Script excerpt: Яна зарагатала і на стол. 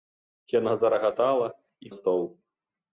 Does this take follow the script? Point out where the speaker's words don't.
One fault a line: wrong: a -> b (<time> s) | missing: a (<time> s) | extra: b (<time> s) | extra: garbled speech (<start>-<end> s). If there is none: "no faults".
no faults